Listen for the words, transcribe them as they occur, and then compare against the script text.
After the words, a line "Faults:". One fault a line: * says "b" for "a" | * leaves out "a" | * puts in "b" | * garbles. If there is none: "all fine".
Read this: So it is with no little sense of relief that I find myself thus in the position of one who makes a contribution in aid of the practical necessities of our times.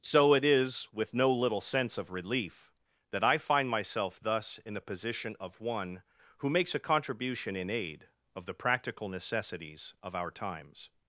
So it is with no little sense of relief that I find myself thus in the position of one who makes a contribution in aid of the practical necessities of our times.
Faults:
all fine